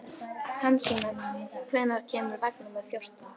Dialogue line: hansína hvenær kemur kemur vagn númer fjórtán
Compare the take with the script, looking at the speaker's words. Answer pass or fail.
fail